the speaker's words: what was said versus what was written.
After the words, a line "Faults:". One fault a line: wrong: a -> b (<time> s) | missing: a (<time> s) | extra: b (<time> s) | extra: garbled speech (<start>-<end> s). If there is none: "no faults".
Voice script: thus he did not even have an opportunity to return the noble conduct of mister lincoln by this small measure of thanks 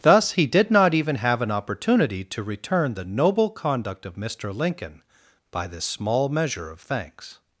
thus he did not even have an opportunity to return the noble conduct of mister lincoln by this small measure of thanks
Faults:
no faults